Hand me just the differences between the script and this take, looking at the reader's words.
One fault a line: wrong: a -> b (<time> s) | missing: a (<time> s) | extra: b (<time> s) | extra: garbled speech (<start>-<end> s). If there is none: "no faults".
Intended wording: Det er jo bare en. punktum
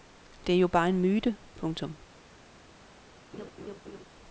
extra: myte (1.0 s)